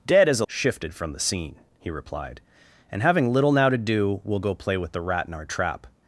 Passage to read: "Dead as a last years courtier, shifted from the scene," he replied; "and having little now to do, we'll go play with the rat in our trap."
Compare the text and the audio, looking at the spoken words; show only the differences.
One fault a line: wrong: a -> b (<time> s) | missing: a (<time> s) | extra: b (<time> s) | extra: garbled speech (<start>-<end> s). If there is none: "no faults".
missing: last years courtier (0.5 s)